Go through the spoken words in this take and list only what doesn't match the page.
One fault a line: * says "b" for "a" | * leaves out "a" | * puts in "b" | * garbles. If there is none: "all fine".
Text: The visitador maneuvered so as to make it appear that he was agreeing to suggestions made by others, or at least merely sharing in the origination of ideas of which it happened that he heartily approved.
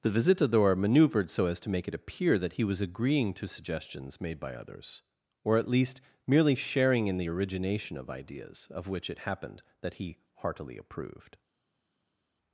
all fine